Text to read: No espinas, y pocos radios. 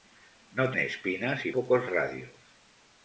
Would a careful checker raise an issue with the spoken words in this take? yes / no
no